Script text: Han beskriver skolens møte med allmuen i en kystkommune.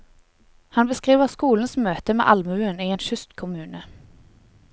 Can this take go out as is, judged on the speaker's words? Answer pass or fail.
pass